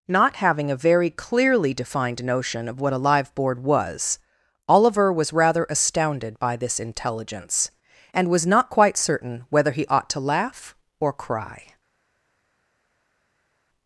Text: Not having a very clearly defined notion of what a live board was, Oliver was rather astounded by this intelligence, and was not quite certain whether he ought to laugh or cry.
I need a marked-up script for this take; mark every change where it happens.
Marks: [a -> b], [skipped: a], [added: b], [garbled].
Not having a very clearly defined notion of what a live board was, Oliver was rather astounded by this intelligence, and was not quite certain whether he ought to laugh or cry.